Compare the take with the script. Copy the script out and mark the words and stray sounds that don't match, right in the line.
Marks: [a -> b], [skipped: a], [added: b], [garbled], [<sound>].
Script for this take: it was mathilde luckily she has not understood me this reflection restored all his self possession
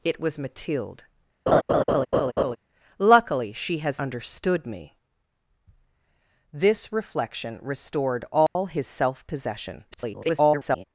it was mathilde [laugh] luckily she has [skipped: not] understood me this reflection restored all [dropout] his self possession [garbled]